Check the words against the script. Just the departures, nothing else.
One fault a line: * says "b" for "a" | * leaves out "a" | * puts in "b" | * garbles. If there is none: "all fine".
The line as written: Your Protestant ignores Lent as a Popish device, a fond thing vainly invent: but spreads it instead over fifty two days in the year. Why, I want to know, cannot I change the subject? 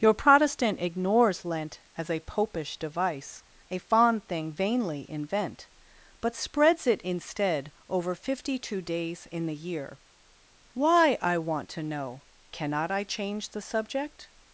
all fine